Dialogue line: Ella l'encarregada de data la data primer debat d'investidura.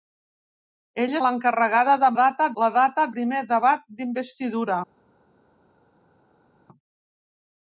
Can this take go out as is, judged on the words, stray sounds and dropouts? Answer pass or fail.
pass